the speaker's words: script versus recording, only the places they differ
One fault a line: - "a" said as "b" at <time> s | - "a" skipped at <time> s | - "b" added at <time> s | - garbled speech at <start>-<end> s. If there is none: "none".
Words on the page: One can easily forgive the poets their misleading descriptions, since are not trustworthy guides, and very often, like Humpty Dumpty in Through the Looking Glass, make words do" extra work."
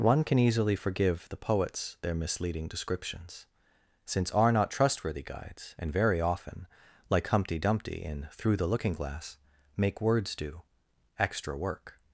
none